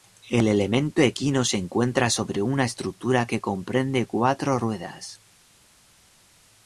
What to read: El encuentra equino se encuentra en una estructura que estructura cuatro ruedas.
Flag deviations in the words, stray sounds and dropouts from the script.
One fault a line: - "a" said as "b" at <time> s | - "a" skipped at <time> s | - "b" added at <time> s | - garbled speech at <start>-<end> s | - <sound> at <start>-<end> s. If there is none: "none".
- "encuentra" said as "elemento" at 0.5 s
- "en" said as "sobre" at 2.1 s
- "estructura" said as "comprende" at 3.4 s